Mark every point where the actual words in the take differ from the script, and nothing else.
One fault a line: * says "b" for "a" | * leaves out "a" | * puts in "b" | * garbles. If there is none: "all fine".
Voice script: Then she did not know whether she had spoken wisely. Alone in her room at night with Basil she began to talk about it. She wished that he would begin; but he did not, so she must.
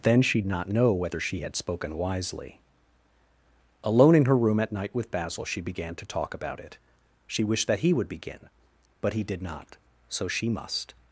* leaves out "did"